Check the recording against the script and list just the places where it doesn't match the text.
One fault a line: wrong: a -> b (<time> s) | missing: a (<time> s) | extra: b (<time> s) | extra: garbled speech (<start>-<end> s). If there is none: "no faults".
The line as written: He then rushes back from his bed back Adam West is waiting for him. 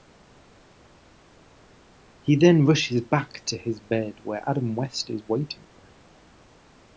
wrong: from -> to (3.5 s)
wrong: back -> where (4.2 s)